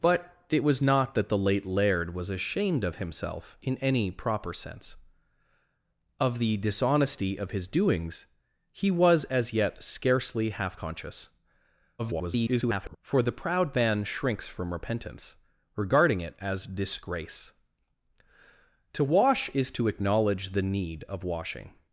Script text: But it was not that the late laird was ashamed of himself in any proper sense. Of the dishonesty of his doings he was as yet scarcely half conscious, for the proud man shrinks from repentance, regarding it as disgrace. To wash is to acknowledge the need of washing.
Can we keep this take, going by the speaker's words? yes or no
no